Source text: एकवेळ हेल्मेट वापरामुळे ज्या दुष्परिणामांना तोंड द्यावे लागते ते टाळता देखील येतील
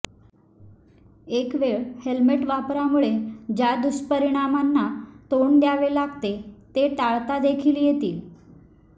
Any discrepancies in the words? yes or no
no